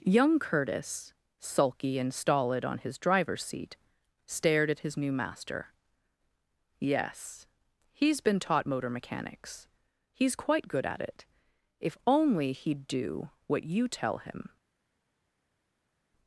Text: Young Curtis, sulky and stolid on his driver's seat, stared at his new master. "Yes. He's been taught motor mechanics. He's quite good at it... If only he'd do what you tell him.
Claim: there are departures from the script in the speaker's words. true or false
false